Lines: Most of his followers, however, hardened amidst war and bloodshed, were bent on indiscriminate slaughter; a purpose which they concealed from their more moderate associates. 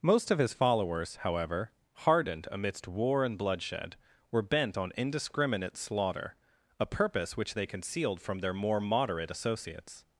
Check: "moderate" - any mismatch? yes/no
no